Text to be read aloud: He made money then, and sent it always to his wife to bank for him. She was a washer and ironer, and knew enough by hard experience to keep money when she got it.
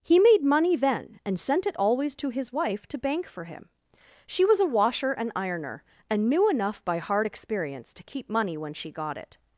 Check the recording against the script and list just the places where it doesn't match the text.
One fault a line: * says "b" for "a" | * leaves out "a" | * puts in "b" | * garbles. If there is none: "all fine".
all fine